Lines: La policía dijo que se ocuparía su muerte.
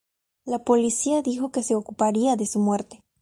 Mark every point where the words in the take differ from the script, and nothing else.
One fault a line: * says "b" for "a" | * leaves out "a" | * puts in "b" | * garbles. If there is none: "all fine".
* puts in "de"